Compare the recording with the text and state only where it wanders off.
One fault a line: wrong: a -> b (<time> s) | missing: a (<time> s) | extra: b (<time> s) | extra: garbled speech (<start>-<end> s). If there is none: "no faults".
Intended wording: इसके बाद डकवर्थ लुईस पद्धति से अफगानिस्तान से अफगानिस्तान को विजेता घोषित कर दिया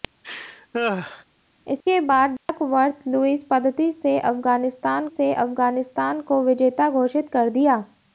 no faults